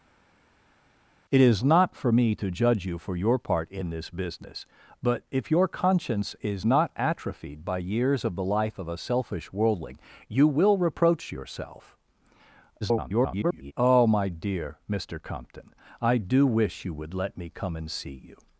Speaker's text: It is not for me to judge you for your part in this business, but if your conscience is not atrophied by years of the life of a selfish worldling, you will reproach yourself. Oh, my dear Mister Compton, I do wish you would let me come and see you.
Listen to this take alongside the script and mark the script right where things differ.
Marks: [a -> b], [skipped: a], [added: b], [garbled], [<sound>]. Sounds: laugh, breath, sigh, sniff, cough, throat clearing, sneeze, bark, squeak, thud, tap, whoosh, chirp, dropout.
It is not for me to judge you for your part in this business, but if your conscience is not atrophied by years of the life of a selfish worldling, you will reproach yourself. [garbled] Oh, my dear Mister Compton, I do wish you would let me come and see you.